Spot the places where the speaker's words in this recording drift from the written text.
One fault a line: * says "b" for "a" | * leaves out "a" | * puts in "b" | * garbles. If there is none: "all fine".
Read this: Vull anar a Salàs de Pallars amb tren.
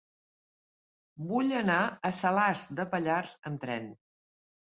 all fine